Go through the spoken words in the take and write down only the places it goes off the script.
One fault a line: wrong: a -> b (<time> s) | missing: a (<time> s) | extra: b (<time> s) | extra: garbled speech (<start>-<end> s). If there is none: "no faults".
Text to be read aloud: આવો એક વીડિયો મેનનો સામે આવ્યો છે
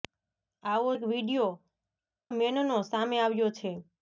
no faults